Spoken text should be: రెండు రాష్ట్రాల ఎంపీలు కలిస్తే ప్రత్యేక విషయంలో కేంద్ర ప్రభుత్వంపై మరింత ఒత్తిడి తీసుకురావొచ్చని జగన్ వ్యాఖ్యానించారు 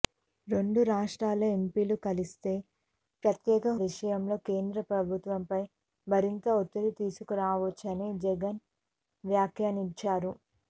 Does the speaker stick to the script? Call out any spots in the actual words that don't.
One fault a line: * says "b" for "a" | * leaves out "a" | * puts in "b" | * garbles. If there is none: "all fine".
all fine